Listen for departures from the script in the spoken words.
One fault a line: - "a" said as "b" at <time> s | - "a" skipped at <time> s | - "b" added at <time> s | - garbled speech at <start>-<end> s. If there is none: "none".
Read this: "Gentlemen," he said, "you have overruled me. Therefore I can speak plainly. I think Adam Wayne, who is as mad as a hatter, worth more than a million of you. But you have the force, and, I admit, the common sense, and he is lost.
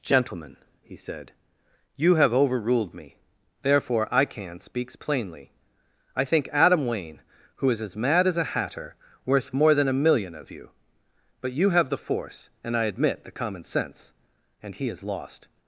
- "speak" said as "speaks" at 4.6 s